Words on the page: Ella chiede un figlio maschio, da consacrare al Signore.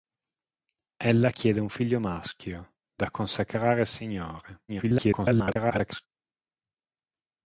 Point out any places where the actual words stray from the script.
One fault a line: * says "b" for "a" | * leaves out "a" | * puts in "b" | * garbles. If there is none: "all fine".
* garbles